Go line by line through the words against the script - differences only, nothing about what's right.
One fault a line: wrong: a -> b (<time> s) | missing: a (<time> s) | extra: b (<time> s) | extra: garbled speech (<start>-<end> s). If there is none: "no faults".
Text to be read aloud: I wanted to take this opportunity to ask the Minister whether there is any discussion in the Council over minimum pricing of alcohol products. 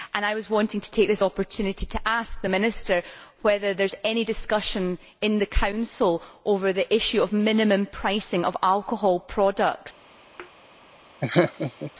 extra: the issue of (6.7 s)